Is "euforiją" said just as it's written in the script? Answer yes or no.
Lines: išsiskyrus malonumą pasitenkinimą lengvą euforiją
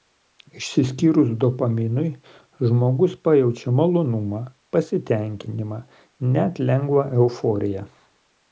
yes